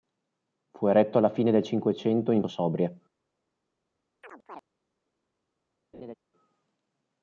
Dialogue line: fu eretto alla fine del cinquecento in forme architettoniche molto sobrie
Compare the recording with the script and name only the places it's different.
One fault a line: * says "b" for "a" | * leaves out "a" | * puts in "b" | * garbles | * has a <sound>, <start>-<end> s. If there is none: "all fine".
* leaves out "forme architettoniche molto"
* has a chirp, 4.2-4.6 s
* has a laugh, 5.9-6.1 s